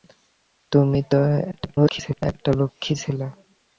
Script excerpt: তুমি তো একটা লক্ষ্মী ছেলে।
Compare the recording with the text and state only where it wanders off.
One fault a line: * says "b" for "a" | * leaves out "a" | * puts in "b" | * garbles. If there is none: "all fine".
* garbles